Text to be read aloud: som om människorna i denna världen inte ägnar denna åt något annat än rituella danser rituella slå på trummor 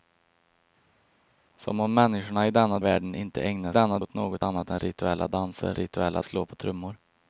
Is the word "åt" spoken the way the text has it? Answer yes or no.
yes